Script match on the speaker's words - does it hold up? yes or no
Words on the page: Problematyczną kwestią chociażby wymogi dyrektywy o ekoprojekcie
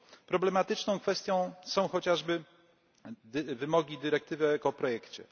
no